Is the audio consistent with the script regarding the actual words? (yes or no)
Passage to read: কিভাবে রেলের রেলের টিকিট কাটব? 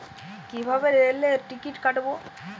no